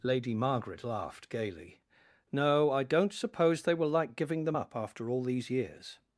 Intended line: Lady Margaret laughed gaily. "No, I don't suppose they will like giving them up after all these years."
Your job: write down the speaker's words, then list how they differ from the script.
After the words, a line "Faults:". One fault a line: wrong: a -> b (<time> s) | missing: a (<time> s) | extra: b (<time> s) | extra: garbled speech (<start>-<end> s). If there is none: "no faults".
Lady Margaret laughed gaily. "No, I don't suppose they will like giving them up after all these years."
Faults:
no faults